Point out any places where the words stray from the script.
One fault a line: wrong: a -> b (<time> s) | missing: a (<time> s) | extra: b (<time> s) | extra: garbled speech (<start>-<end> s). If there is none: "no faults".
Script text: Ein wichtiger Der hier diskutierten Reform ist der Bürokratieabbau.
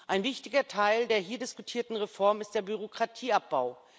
extra: Teil (0.7 s)